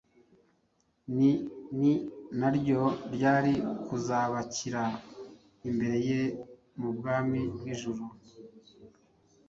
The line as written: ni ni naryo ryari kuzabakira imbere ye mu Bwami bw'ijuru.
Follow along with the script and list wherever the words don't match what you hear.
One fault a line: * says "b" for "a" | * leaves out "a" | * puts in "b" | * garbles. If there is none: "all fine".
all fine